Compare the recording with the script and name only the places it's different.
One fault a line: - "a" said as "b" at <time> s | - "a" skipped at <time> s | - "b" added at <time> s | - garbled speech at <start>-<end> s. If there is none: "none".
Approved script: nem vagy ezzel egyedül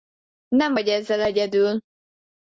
none